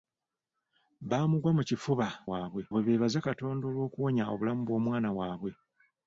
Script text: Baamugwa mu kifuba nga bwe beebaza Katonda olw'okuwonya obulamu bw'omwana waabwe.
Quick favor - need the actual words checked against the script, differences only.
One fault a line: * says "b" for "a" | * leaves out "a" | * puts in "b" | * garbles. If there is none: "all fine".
* says "waabwe" for "nga"